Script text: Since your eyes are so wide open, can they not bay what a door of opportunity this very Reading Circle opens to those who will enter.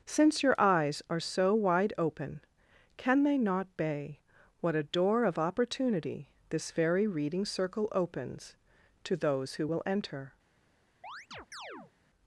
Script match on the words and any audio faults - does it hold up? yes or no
no